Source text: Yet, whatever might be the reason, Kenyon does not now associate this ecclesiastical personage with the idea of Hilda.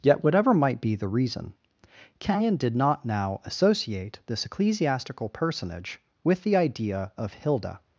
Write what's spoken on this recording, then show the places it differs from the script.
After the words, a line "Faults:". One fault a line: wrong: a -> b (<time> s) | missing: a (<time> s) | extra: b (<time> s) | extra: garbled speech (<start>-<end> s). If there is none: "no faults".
Yet, whatever might be the reason, Kenyon did not now associate this ecclesiastical personage with the idea of Hilda.
Faults:
wrong: does -> did (2.6 s)